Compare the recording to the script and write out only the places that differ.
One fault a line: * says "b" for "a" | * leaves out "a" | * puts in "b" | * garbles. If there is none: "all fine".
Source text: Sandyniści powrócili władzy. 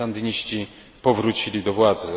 * puts in "do"